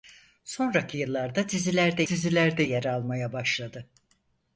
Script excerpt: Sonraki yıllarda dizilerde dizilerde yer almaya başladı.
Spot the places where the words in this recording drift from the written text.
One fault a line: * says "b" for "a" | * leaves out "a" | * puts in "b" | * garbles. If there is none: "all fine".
all fine